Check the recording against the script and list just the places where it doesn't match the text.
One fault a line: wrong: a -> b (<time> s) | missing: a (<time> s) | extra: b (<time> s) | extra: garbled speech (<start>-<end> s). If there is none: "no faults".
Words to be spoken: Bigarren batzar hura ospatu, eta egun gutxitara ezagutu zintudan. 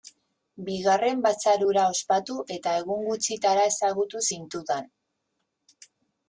no faults